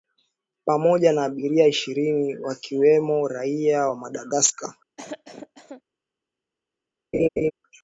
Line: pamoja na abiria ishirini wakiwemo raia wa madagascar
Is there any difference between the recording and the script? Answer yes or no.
no